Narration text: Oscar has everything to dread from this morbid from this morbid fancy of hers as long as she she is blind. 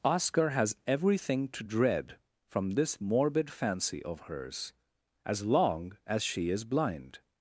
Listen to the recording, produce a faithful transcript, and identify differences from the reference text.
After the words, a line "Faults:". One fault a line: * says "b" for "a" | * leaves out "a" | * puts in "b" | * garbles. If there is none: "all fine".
Oscar has everything to dread from this morbid fancy of hers as long as she is blind.
Faults:
* leaves out "from this morbid"
* leaves out "she"